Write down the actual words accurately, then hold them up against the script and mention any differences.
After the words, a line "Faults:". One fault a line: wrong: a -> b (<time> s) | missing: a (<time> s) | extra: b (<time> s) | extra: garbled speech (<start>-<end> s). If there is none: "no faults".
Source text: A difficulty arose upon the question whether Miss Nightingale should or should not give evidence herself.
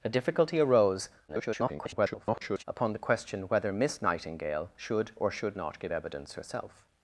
A difficulty arose [garbled] upon the question whether Miss Nightingale should or should not give evidence herself.
Faults:
extra: garbled speech (1.3-2.6 s)